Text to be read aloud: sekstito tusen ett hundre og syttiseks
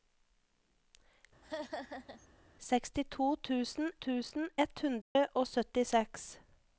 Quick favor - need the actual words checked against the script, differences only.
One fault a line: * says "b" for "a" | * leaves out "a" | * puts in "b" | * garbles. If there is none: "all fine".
* puts in "tusen"